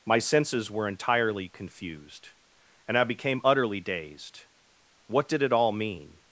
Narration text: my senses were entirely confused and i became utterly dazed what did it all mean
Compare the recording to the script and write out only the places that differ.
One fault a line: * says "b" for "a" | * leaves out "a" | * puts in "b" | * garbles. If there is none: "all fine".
all fine